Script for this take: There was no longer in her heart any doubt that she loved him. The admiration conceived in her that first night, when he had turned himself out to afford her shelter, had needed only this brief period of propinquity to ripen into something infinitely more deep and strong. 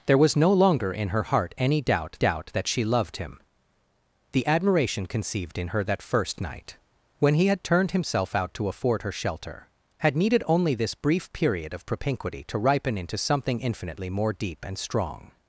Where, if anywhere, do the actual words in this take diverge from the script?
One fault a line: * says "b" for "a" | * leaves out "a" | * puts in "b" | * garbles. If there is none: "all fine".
* puts in "doubt"